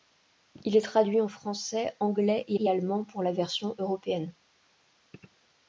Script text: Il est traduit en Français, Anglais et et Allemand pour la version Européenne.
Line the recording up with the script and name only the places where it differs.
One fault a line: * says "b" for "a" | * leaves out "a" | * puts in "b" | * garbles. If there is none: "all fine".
all fine